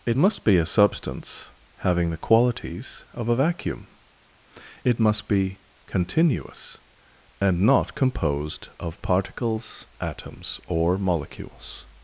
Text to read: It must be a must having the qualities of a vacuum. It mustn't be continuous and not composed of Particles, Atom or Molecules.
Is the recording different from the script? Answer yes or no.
yes